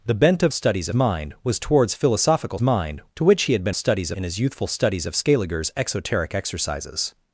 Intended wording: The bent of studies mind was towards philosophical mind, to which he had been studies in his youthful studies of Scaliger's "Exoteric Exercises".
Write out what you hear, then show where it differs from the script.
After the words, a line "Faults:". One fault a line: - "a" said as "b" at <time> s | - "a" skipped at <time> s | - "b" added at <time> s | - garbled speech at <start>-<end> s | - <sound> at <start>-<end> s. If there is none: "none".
The bent of studies mind was towards philosophical mind, to which he had been studies in his youthful studies of Scaliger's "Exoteric Exercises".
Faults:
none